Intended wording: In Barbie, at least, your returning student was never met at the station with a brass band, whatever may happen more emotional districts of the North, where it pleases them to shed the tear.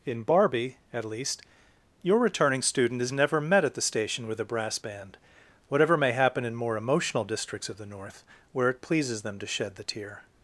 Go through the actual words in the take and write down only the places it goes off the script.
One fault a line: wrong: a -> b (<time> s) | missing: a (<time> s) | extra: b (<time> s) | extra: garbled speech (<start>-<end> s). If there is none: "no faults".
wrong: was -> is (3.0 s)
extra: in (6.5 s)